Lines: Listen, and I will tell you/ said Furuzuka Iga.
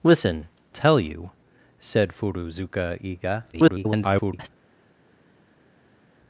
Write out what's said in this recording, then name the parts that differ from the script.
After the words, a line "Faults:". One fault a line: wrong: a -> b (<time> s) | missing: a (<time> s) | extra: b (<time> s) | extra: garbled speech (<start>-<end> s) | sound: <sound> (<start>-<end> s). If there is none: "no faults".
Listen, tell you/ said Furuzuka Iga. [garbled]
Faults:
missing: and I will (0.5 s)
extra: garbled speech (3.5-4.5 s)